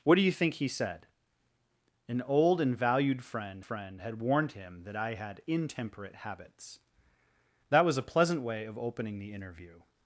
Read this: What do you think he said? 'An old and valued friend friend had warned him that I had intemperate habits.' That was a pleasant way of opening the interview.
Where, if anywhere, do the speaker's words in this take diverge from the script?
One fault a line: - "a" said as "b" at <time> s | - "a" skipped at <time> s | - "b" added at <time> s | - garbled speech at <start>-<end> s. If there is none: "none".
none